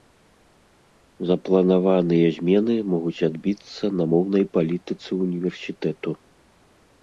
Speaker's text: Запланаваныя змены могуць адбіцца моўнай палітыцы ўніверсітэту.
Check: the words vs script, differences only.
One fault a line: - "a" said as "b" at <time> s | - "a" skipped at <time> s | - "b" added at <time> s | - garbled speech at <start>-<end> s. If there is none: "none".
- "на" added at 4.0 s